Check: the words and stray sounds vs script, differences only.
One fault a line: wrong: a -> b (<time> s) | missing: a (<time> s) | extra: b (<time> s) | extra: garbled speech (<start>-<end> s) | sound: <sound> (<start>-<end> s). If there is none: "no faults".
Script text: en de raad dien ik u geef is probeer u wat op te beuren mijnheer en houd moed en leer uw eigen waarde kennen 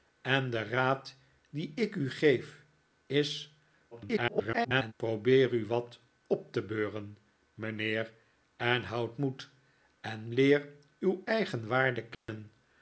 extra: garbled speech (3.9-4.9 s)
sound: dropout (12.1-12.3 s)